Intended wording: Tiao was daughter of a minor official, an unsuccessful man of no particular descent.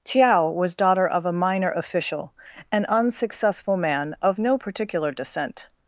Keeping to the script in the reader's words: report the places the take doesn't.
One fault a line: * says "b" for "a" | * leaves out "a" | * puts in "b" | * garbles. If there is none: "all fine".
all fine